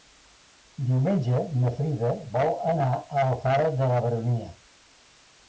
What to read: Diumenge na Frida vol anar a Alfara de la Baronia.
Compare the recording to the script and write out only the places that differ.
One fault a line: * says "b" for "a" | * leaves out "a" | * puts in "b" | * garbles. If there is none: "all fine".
all fine